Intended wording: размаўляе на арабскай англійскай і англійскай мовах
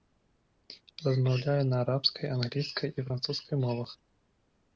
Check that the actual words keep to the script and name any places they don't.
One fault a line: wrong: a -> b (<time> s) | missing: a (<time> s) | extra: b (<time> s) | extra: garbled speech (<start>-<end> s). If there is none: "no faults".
wrong: англійскай -> французскай (3.1 s)